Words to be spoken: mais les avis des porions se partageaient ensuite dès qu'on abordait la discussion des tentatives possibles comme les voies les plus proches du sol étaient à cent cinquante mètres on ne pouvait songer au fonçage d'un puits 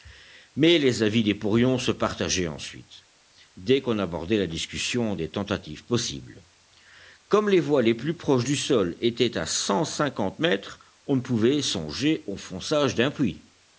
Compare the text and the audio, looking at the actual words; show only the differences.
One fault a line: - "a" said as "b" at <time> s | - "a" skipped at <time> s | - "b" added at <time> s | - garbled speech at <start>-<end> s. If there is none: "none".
none